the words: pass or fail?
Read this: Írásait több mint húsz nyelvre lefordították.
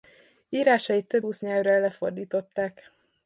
fail